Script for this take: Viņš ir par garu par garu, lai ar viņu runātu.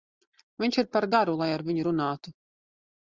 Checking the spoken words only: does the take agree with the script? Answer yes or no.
no